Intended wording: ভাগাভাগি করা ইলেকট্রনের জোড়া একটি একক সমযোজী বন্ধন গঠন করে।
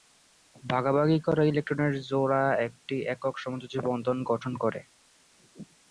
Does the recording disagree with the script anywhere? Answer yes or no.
no